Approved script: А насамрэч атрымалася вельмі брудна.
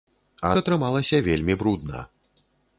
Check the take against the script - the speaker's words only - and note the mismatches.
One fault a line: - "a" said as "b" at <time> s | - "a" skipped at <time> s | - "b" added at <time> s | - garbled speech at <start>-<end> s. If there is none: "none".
- "насамрэч" skipped at 0.5 s